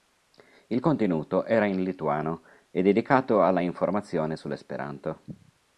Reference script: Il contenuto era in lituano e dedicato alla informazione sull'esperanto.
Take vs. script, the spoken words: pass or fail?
pass